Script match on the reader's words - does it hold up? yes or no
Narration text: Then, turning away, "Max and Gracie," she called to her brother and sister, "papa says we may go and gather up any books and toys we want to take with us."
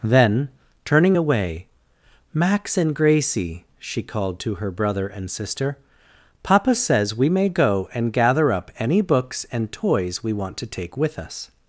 yes